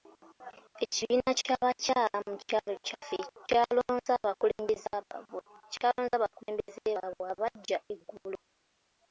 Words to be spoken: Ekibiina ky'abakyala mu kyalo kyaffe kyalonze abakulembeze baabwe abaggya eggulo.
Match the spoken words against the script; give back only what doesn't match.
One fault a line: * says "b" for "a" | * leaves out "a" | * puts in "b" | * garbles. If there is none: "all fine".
all fine